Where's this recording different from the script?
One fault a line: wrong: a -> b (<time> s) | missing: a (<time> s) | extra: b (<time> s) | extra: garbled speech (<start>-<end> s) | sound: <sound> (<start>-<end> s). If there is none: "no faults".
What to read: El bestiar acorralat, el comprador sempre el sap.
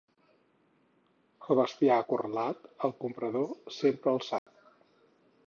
sound: dropout (4.4-4.5 s)